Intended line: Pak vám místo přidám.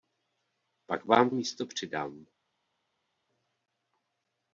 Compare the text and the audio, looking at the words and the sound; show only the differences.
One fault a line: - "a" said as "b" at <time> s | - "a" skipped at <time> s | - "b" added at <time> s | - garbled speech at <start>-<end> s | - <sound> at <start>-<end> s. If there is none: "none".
none